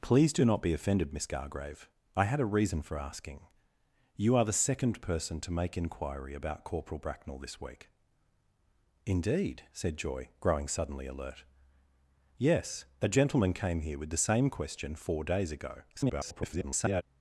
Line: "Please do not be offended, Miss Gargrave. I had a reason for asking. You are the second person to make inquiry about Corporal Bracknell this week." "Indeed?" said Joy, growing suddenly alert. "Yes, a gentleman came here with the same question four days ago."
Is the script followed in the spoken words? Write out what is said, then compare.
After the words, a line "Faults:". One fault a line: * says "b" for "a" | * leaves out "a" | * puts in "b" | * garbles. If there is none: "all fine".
"Please do not be offended, Miss Gargrave. I had a reason for asking. You are the second person to make inquiry about Corporal Bracknell this week." "Indeed?" said Joy, growing suddenly alert. "Yes, a gentleman came here with the same question four days ago." [garbled]
Faults:
* garbles